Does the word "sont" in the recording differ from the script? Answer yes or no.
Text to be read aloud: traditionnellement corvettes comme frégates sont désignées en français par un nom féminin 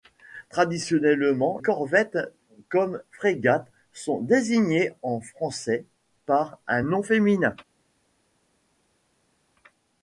no